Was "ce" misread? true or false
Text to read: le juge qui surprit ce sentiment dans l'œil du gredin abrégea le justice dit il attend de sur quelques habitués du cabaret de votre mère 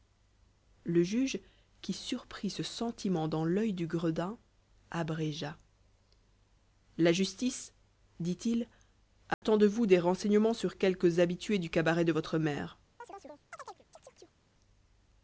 false